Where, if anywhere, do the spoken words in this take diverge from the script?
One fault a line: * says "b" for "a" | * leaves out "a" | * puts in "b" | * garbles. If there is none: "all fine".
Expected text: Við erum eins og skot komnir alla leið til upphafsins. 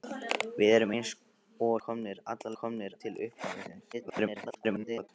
* leaves out "skot"
* says "komnir" for "leið"
* garbles